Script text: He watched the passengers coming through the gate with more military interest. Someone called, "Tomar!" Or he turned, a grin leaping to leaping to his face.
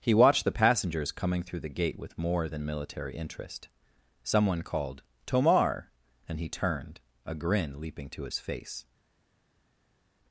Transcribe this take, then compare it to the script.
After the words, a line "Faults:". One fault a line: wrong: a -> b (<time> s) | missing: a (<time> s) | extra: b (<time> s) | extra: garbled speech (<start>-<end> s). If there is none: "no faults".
He watched the passengers coming through the gate with more than military interest. Someone called, "Tomar!" And he turned, a grin leaping to his face.
Faults:
extra: than (2.5 s)
wrong: Or -> And (6.3 s)
missing: leaping to (8.2 s)